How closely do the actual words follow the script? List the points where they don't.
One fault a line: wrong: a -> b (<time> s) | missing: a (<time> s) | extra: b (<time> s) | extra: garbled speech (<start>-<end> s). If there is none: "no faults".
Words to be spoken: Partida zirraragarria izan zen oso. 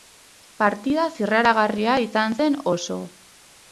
no faults